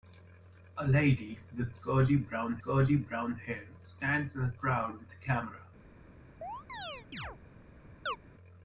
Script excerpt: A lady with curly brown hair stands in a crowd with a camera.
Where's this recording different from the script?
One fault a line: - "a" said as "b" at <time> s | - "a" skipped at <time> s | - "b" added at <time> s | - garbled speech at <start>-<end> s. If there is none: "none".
- "curly brown" added at 2.6 s